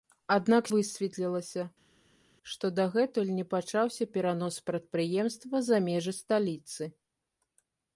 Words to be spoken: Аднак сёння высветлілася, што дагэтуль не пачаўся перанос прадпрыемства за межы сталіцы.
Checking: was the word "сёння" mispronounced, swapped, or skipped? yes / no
yes